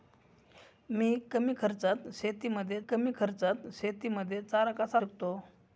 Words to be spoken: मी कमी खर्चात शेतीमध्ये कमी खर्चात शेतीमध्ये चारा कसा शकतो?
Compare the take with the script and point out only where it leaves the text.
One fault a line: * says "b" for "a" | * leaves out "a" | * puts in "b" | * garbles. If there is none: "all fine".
all fine